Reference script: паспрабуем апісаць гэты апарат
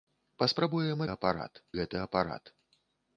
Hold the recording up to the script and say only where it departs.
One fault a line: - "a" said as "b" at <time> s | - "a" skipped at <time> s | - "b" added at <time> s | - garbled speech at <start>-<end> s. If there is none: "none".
- "апісаць" said as "апарат" at 1.1 s